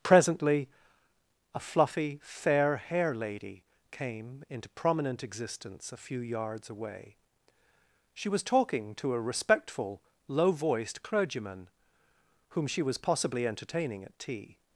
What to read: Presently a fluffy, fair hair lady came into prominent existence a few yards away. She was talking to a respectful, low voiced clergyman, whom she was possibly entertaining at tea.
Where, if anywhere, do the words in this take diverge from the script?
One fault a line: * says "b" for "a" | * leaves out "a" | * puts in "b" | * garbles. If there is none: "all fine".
all fine